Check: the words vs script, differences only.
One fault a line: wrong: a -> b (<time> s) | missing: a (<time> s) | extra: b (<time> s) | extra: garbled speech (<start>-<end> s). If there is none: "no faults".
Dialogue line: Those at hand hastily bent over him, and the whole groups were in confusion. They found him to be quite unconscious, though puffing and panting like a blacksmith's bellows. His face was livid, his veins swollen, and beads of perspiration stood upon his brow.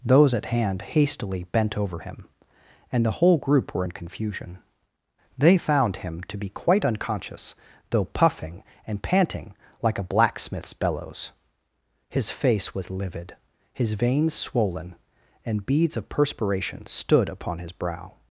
wrong: groups -> group (3.4 s)